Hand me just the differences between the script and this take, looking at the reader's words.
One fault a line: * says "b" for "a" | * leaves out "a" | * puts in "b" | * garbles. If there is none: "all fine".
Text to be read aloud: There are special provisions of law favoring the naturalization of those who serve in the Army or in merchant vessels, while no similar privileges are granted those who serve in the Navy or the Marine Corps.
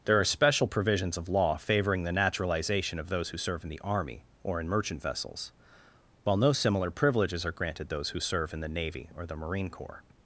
all fine